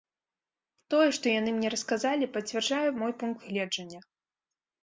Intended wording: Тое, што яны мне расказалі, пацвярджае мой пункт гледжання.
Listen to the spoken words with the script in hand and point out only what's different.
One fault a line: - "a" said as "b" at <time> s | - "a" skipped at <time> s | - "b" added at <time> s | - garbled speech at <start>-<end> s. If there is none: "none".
none